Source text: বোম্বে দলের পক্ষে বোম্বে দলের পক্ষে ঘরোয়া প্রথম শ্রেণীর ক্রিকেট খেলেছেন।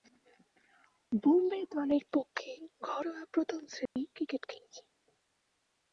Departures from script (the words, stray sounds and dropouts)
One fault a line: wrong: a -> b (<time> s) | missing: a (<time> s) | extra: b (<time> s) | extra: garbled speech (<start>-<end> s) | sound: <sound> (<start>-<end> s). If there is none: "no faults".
missing: বোম্বে দলের পক্ষে (2.5 s)
sound: dropout (3.9-4.0 s)